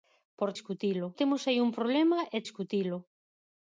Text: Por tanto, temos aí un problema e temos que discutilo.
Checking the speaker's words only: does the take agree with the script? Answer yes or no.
no